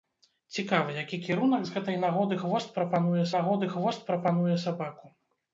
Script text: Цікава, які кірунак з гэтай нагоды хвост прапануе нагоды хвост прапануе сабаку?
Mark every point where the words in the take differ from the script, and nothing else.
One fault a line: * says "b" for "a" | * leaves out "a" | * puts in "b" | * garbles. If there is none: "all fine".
all fine